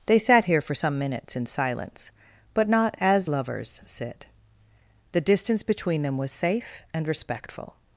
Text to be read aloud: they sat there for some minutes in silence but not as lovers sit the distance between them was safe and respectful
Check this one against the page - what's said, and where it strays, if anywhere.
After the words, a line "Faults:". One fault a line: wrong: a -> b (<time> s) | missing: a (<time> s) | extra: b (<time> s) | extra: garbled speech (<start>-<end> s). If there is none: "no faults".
they sat here for some minutes in silence but not as lovers sit the distance between them was safe and respectful
Faults:
wrong: there -> here (0.5 s)